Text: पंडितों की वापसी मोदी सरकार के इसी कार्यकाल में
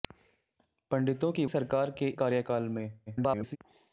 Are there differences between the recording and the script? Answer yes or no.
yes